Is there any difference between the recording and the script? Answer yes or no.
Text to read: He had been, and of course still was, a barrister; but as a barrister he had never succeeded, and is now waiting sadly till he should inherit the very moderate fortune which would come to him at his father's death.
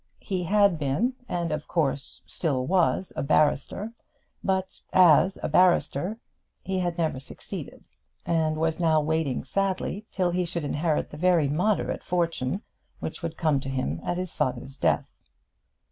yes